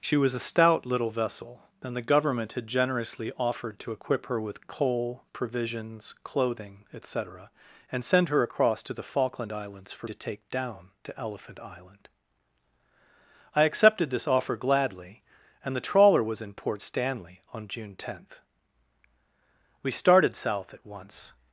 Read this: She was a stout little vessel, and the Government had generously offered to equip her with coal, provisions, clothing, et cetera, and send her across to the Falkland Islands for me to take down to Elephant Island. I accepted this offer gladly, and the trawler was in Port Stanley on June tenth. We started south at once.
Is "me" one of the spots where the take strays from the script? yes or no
yes